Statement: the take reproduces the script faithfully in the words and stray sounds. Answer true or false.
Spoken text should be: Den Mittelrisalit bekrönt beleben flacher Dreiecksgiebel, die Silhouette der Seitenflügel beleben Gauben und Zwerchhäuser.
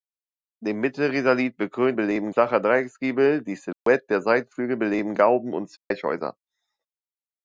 false